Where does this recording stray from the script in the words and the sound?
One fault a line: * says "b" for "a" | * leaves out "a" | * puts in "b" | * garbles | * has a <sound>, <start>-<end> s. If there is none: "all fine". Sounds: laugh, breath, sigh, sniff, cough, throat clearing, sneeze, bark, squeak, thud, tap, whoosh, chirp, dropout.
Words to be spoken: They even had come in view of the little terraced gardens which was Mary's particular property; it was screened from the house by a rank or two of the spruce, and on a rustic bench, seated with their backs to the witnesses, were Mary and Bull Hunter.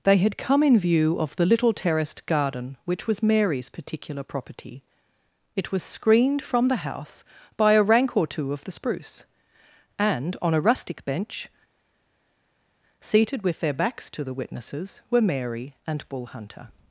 * leaves out "even"
* says "garden" for "gardens"